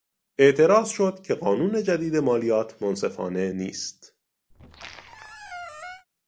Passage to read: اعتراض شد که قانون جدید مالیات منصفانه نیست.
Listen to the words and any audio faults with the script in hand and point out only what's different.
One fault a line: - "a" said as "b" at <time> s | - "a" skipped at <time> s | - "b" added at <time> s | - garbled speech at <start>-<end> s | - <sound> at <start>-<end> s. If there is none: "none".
- squeak at 4.5-6.1 s